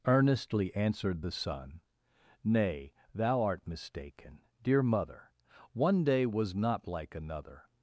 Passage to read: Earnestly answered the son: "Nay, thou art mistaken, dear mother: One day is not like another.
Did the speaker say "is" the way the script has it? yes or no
no